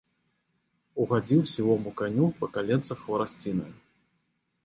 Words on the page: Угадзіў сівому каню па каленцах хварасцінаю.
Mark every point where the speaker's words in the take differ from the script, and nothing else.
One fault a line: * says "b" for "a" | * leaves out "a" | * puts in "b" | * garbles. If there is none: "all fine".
all fine